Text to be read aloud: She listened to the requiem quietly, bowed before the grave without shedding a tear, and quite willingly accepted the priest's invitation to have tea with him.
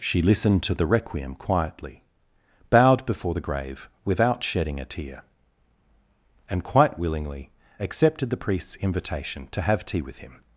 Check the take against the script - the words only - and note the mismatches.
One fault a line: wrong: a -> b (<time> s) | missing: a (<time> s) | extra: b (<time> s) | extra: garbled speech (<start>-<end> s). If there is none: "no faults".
no faults